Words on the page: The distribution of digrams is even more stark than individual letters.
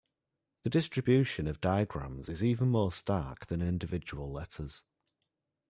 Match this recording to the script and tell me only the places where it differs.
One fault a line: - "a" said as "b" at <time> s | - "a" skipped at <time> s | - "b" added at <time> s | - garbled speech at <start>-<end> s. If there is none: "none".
none